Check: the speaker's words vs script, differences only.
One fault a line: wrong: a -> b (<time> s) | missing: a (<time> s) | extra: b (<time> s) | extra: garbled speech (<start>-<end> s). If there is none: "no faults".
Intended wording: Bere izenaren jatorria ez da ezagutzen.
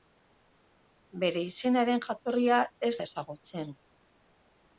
no faults